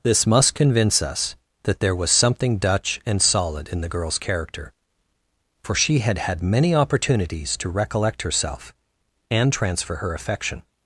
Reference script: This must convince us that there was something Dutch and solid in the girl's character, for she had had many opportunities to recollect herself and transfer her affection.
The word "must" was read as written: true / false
true